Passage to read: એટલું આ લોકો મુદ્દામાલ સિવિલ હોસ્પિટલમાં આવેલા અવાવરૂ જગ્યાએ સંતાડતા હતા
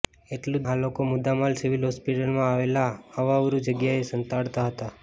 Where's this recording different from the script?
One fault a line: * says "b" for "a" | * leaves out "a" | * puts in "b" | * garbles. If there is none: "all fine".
all fine